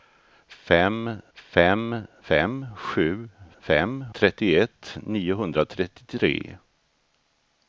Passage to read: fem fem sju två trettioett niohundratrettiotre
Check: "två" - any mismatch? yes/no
yes